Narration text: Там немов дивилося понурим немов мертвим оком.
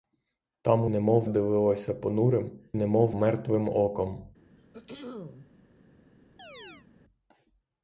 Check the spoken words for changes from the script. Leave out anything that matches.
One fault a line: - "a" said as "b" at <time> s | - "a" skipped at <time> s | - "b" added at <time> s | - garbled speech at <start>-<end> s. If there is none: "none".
none